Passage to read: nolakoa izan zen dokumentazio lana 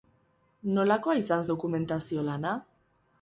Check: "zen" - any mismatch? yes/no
yes